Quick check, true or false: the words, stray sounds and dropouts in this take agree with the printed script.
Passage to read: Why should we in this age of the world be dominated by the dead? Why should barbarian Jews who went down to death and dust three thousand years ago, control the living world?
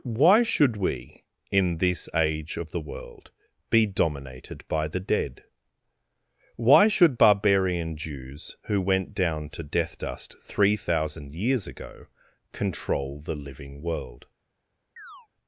false